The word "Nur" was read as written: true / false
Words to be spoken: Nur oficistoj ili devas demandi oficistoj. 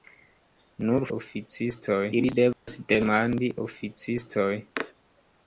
true